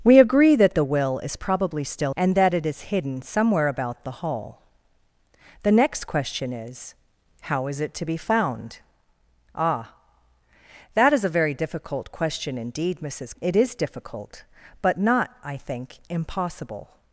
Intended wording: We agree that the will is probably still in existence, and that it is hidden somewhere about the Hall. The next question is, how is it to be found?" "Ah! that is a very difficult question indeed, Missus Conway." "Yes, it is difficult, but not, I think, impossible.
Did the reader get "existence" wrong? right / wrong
wrong